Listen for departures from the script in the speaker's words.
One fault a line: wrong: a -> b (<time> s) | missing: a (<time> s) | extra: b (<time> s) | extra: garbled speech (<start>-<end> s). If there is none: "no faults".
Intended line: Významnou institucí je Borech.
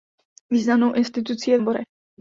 no faults